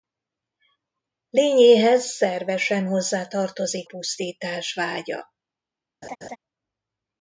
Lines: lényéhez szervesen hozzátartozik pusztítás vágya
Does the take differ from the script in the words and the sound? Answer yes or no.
yes